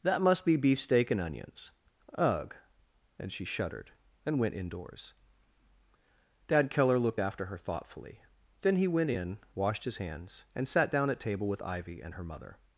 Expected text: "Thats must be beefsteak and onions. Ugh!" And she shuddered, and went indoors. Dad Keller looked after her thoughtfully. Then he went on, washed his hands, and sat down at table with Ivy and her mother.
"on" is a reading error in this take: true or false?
true